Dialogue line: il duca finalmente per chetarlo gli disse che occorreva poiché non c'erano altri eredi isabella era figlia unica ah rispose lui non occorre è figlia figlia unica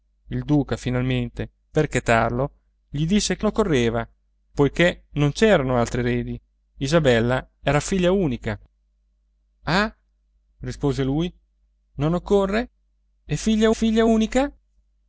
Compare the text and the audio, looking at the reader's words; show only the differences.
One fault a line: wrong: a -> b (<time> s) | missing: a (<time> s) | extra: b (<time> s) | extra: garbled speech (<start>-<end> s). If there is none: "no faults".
no faults